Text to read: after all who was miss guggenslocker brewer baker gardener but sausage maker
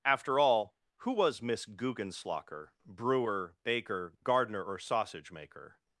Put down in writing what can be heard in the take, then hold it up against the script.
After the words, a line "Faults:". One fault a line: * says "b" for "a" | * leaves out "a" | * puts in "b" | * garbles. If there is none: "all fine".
after all who was miss guggenslocker brewer baker gardener or sausage maker
Faults:
* says "or" for "but"